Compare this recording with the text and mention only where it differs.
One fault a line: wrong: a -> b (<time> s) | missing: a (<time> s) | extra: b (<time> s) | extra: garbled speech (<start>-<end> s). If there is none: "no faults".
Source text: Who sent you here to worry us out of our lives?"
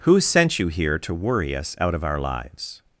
no faults